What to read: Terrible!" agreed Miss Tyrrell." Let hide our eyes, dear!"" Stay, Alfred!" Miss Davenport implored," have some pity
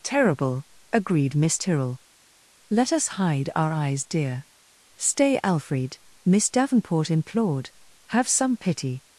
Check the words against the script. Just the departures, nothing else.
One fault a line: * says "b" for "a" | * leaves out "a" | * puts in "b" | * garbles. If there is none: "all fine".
* puts in "us"